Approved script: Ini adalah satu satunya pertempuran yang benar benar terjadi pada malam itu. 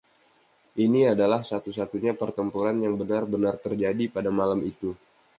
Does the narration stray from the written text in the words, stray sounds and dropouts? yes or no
no